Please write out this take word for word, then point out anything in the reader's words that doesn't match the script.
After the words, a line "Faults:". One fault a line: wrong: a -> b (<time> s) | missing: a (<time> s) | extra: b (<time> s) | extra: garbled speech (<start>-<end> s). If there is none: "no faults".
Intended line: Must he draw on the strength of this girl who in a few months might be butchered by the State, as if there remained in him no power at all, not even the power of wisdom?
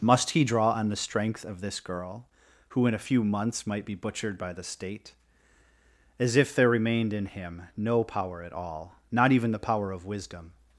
Must he draw on the strength of this girl who in a few months might be butchered by the State, as if there remained in him no power at all, not even the power of wisdom?
Faults:
no faults